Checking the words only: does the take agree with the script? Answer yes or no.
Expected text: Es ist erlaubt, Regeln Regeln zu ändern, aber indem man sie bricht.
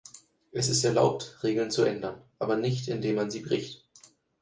no